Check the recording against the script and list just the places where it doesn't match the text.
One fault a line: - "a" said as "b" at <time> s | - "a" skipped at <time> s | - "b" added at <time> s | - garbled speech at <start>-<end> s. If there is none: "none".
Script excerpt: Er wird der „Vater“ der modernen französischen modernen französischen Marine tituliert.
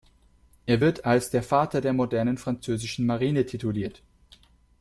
- "als" added at 1.0 s
- "modernen französischen" skipped at 3.1 s